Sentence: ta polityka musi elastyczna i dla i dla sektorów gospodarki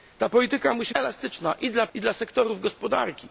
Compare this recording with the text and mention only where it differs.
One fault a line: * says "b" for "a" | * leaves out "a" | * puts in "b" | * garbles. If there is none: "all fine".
all fine